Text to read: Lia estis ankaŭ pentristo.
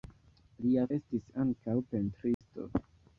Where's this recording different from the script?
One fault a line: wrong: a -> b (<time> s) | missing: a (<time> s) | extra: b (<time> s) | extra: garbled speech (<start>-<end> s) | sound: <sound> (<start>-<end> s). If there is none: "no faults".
sound: dropout (2.3-2.4 s)